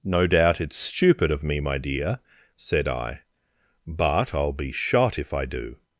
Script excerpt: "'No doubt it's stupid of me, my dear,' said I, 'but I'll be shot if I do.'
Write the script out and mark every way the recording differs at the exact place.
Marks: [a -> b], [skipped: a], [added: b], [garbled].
"'No doubt it's stupid of me, my dear,' said I, 'but I'll be shot if I do.'